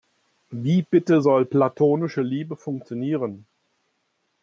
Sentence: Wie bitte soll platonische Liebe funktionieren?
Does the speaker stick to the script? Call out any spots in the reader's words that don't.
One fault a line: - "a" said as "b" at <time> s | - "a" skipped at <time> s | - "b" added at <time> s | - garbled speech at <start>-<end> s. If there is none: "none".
none